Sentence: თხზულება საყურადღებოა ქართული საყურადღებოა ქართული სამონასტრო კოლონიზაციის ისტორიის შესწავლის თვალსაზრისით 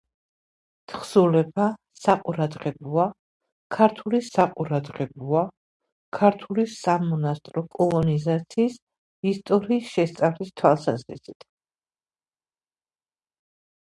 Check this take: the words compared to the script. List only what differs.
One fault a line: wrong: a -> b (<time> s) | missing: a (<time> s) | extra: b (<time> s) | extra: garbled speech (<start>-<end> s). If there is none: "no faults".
no faults